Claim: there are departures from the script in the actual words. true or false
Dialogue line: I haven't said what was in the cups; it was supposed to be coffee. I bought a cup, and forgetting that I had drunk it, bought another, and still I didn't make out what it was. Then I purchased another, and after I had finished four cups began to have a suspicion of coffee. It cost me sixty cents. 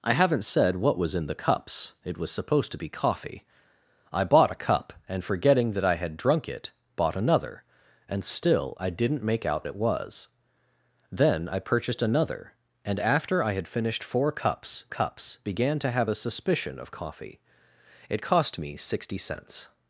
true